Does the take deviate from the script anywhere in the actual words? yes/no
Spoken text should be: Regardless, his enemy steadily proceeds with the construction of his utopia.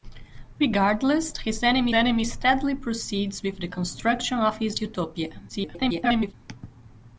yes